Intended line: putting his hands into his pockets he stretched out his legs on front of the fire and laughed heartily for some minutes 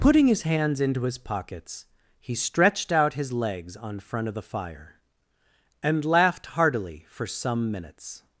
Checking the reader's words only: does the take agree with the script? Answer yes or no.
yes